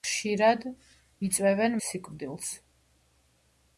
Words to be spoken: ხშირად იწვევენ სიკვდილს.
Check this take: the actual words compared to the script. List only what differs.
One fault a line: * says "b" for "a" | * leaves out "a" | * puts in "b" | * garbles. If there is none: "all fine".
all fine